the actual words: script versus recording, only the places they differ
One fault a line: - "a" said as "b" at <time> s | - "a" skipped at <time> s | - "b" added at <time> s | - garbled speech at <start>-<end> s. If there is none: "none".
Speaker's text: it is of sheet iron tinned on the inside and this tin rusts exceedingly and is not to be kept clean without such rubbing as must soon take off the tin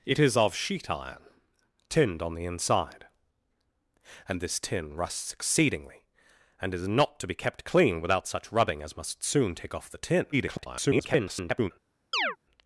- garbled speech at 10.3-11.7 s